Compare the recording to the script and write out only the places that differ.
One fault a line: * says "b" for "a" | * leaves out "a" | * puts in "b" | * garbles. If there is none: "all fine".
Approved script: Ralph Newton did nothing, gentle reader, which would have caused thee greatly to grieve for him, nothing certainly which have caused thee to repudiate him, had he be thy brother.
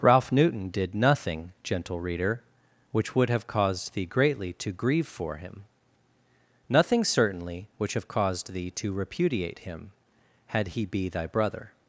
all fine